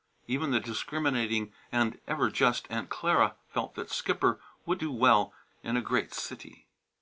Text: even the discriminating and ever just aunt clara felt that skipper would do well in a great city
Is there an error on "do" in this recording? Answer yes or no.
no